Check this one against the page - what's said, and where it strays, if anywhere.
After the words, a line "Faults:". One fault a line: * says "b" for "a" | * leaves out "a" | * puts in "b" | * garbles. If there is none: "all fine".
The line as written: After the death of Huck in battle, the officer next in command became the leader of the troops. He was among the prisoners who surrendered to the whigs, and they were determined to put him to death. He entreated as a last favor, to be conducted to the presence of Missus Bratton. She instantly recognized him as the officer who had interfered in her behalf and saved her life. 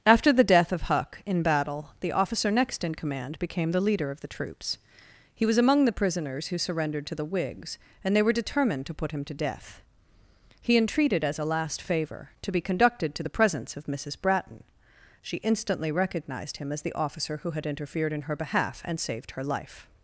After the death of Huck in battle, the officer next in command became the leader of the troops. He was among the prisoners who surrendered to the whigs, and they were determined to put him to death. He entreated as a last favor, to be conducted to the presence of Missus Bratton. She instantly recognized him as the officer who had interfered in her behalf and saved her life.
Faults:
all fine